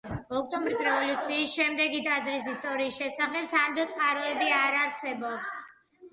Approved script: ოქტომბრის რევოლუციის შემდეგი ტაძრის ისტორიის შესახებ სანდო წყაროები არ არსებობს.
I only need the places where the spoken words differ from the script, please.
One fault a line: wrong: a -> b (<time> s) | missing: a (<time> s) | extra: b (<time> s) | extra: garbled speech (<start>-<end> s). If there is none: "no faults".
no faults